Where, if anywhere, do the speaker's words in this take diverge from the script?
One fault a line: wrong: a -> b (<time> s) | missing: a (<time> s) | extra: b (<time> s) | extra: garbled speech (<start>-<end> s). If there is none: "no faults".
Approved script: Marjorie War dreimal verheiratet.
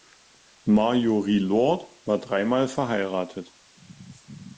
extra: Lord (1.4 s)